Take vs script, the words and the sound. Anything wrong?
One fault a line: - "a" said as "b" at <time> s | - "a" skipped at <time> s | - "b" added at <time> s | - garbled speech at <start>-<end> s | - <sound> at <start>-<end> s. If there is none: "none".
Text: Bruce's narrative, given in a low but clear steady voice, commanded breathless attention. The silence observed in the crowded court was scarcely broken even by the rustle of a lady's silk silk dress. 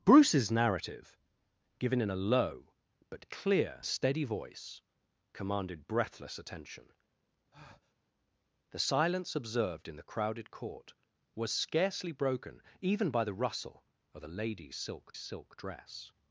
- breath at 7.5-7.9 s